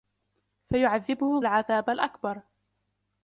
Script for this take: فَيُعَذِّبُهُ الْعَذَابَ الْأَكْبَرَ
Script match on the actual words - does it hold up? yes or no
yes